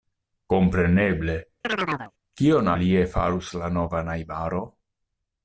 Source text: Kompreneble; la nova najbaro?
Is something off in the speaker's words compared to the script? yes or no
yes